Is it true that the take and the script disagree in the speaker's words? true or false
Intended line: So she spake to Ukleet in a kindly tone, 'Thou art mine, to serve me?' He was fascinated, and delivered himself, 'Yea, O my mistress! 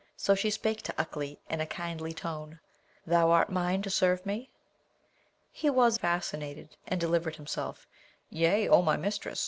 false